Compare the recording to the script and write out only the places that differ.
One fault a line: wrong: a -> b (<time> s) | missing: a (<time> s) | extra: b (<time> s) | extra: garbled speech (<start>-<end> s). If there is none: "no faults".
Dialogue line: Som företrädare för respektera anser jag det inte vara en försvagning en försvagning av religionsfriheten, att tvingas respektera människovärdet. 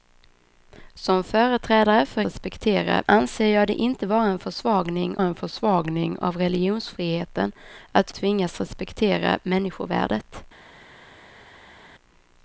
no faults